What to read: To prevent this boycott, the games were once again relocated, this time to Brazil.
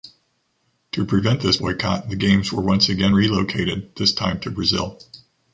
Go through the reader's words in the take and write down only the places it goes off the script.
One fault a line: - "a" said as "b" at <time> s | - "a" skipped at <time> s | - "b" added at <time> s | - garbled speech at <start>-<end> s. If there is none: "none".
none